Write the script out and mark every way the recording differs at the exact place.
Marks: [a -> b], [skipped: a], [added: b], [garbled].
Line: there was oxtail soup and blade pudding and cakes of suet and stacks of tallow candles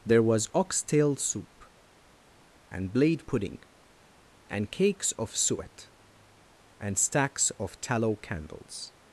there was oxtail soup and blade pudding and cakes of suet and stacks of tallow candles